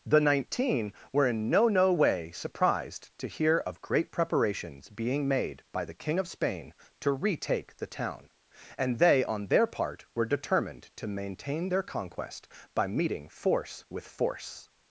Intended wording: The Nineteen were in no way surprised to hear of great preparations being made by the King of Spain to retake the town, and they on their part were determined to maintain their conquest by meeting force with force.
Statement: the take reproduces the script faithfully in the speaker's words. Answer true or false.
false